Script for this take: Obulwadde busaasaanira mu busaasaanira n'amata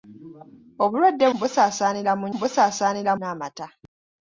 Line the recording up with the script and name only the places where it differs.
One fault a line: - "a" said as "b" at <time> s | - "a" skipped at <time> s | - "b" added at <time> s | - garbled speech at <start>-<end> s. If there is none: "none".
none